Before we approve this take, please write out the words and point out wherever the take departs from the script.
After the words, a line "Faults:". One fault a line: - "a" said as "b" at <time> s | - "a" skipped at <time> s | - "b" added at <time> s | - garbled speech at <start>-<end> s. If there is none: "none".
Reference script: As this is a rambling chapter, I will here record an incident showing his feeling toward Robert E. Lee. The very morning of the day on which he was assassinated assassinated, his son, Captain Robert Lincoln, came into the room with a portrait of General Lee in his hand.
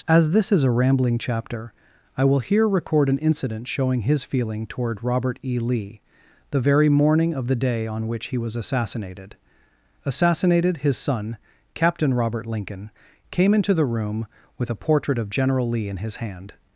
As this is a rambling chapter, I will here record an incident showing his feeling toward Robert E. Lee. The very morning of the day on which he was assassinated assassinated, his son, Captain Robert Lincoln, came into the room with a portrait of General Lee in his hand.
Faults:
none